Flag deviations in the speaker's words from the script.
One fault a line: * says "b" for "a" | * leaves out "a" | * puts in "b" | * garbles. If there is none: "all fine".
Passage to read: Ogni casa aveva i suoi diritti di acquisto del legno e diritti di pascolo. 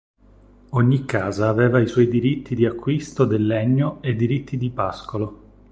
all fine